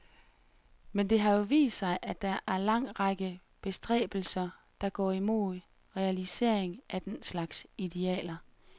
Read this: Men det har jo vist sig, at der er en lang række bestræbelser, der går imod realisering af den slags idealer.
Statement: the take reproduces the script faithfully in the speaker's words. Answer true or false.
true